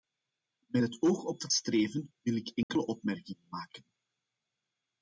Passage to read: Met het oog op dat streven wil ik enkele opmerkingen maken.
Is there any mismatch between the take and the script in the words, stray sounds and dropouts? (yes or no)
yes